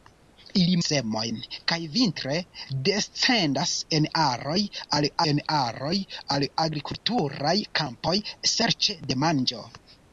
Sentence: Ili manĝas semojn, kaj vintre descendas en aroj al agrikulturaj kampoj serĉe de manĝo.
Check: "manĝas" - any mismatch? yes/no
yes